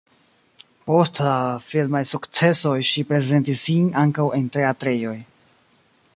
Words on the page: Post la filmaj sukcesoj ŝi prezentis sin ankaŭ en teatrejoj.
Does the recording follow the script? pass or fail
pass